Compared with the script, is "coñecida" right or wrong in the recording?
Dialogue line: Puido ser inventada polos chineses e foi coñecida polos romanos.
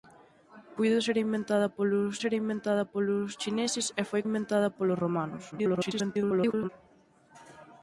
wrong